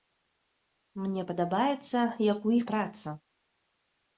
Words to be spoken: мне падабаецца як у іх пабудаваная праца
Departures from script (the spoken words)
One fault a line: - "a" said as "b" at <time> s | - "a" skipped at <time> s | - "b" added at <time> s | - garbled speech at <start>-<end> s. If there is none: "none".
- "пабудаваная" skipped at 2.6 s